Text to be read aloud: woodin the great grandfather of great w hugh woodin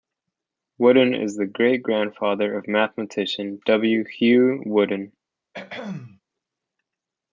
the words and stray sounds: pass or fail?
fail